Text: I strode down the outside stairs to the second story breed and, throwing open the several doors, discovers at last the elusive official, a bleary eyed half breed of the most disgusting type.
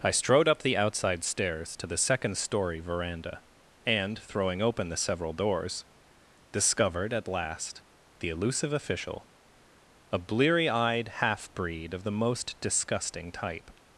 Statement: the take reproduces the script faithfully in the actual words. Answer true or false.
false